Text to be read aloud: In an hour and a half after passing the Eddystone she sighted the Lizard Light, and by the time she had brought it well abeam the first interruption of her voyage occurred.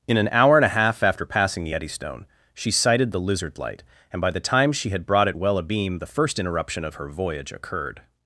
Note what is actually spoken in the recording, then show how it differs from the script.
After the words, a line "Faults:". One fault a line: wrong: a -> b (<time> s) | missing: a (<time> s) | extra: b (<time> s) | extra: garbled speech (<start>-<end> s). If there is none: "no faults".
In an hour and a half after passing the Eddystone she sighted the Lizard Light, and by the time she had brought it well abeam the first interruption of her voyage occurred.
Faults:
no faults